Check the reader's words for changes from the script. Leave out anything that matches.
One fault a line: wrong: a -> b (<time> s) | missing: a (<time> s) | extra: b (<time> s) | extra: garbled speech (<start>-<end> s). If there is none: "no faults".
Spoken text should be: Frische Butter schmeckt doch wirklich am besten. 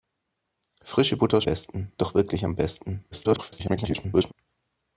wrong: schmeckt -> besten (1.4 s)
extra: garbled speech (3.1-4.3 s)